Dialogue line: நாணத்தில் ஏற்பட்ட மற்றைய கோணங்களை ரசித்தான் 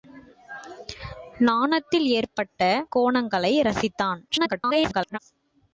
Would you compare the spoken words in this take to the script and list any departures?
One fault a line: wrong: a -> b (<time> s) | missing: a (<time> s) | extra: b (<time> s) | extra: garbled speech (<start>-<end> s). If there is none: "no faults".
missing: மற்றைய (2.6 s)
extra: garbled speech (4.3-5.2 s)